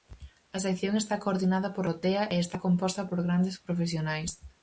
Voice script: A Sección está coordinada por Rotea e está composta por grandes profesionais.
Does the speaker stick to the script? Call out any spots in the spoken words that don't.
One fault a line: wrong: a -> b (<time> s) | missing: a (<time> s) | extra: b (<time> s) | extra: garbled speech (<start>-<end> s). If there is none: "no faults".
no faults